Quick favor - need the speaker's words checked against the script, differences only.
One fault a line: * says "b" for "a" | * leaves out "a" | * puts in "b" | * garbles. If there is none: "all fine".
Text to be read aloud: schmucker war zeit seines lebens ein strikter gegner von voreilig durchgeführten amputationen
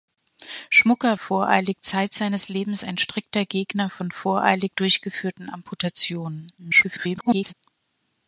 * says "voreilig" for "war"
* garbles